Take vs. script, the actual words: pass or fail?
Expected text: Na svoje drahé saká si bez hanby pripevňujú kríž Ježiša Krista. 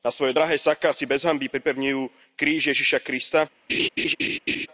pass